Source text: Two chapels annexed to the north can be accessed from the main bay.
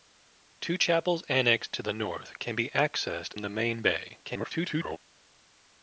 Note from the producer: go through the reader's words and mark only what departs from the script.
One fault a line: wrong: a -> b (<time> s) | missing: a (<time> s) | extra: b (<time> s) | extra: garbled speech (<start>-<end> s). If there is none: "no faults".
missing: from (3.4 s)
extra: garbled speech (4.2-5.0 s)